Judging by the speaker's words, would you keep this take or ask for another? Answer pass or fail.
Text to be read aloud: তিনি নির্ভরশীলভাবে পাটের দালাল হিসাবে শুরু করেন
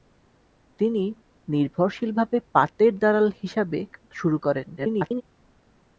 fail